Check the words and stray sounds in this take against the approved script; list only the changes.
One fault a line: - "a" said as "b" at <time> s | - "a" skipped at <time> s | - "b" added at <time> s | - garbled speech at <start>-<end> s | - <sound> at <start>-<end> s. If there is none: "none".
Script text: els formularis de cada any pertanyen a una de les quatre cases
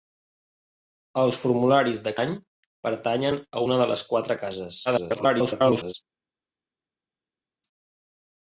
- "cada" skipped at 2.1 s
- garbled speech at 4.9-5.9 s